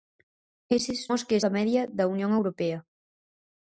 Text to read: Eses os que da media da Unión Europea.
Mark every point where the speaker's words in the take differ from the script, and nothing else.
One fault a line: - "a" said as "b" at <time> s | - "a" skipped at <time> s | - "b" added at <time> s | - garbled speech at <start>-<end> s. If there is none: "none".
none